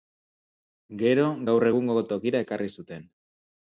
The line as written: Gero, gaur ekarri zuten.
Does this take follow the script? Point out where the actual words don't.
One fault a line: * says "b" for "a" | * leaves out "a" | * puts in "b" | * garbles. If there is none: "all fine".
* puts in "egungo tokira"